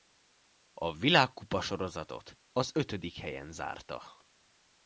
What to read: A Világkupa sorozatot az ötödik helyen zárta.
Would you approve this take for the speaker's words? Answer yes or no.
yes